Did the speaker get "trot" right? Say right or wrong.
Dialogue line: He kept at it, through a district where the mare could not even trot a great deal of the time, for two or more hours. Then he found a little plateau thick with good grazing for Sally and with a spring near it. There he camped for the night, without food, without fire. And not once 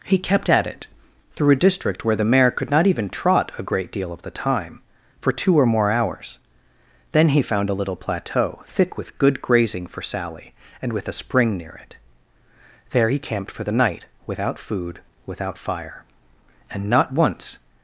right